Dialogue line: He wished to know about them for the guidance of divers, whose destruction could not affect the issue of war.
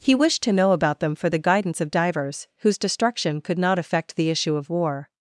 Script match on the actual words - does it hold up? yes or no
yes